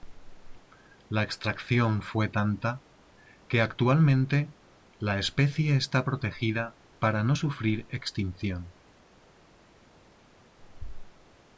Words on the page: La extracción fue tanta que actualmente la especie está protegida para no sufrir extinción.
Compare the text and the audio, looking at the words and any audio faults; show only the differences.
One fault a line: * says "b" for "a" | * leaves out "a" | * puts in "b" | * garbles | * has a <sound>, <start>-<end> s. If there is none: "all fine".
all fine